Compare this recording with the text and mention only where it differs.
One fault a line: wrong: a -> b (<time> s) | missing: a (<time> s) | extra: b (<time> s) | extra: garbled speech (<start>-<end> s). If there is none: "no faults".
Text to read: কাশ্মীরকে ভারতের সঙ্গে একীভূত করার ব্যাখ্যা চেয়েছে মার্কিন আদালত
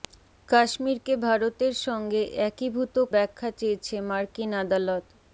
missing: করার (3.0 s)